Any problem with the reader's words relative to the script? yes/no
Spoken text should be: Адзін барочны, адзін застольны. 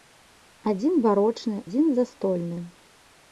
no